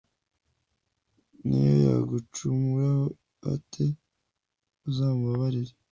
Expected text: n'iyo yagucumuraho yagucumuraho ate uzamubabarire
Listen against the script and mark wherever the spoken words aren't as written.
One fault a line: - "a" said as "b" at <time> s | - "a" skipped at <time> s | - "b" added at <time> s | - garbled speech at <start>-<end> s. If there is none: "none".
- "yagucumuraho" skipped at 3.0 s